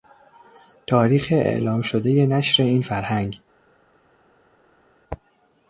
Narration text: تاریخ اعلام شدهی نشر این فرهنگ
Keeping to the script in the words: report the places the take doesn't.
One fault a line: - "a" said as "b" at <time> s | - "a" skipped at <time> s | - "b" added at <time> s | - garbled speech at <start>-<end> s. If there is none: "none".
none